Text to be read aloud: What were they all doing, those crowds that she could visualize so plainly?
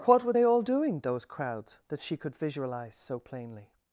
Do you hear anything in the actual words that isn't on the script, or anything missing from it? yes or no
no